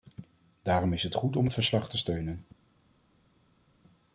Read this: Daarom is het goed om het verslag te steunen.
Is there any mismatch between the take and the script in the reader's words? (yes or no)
no